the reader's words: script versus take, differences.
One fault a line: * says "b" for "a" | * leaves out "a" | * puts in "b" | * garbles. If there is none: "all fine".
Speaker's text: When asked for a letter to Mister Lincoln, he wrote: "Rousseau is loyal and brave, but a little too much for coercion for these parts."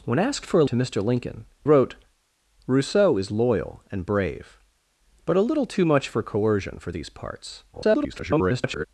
* leaves out "letter"
* leaves out "he"
* garbles